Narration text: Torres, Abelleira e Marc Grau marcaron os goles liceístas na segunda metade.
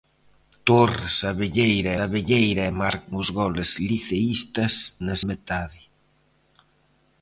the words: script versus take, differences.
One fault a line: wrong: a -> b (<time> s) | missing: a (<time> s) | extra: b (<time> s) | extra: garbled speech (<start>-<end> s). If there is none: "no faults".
extra: Abelleira (2.0 s)
missing: Grau marcaron (3.0 s)
missing: segunda (5.2 s)